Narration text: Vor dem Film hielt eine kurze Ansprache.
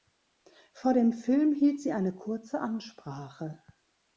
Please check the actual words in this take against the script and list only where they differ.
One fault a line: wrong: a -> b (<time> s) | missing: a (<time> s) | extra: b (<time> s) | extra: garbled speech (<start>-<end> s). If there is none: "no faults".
extra: sie (1.8 s)